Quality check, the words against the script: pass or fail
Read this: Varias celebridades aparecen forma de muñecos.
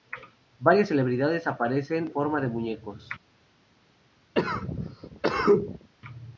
pass